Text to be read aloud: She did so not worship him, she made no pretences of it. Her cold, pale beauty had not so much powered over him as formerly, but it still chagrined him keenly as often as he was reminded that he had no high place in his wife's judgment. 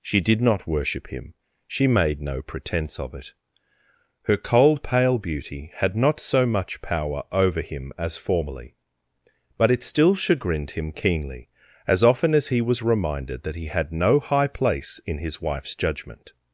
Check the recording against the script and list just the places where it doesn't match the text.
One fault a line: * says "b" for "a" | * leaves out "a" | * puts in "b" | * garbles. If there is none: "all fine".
* leaves out "so"
* says "pretence" for "pretences"
* says "power" for "powered"